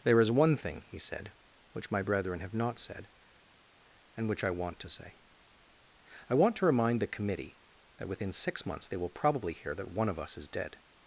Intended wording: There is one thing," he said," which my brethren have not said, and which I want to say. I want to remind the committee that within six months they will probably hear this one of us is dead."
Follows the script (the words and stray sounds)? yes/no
no